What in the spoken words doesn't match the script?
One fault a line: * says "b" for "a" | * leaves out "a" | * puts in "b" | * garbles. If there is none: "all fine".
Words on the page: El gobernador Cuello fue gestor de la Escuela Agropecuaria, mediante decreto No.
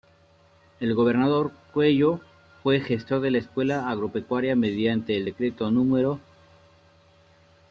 * puts in "el"